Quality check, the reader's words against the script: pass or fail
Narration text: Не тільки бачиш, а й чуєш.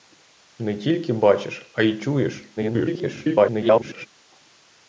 fail